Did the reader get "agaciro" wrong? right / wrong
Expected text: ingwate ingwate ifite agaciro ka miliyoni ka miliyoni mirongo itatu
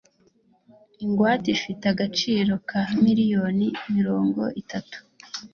right